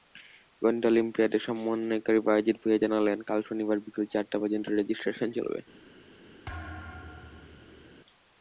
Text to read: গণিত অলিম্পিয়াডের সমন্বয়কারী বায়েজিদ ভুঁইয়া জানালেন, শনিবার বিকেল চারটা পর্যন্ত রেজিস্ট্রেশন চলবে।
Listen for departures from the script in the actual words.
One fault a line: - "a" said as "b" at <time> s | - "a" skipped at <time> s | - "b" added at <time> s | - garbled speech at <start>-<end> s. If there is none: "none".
- "কাল" added at 3.3 s